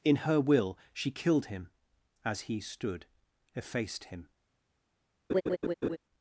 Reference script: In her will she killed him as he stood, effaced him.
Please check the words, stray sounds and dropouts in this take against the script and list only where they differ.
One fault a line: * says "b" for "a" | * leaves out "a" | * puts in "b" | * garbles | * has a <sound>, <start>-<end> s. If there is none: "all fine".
* has a laugh, 5.3-6.0 s